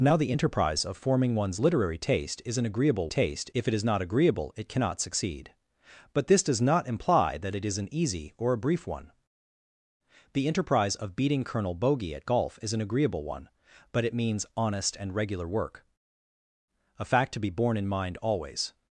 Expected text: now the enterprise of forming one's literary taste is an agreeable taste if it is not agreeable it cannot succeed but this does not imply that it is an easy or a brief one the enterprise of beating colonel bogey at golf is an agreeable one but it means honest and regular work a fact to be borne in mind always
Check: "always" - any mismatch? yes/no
no